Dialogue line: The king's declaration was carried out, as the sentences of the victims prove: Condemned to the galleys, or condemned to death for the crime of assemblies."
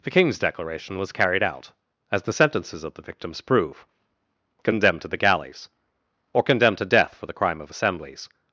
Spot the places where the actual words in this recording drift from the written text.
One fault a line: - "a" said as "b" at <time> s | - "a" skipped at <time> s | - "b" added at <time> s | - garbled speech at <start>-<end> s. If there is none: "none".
none